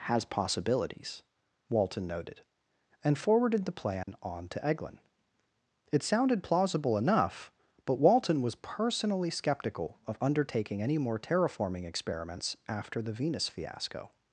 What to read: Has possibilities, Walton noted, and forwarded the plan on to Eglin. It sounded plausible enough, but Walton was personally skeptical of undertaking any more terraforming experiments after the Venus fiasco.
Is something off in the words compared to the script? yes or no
no